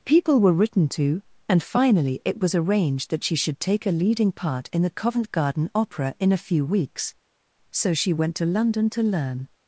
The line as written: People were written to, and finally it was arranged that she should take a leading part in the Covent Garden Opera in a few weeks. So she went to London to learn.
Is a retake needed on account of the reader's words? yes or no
no